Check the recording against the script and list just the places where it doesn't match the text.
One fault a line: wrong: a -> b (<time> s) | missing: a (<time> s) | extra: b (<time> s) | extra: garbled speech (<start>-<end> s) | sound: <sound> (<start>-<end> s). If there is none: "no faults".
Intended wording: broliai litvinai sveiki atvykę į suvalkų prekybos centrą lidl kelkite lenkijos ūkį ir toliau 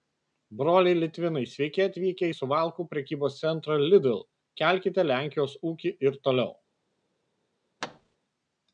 sound: thud (7.8-8.2 s)